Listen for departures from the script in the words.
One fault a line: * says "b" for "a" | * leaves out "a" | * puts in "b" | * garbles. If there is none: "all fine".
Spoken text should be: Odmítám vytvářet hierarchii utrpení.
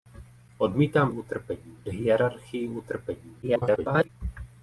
* says "utrpení" for "vytvářet"
* garbles